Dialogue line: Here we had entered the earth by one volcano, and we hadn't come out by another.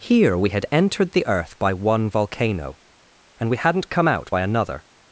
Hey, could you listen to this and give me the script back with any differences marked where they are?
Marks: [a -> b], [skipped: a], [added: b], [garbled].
Here we had entered the earth by one volcano, and we hadn't come out by another.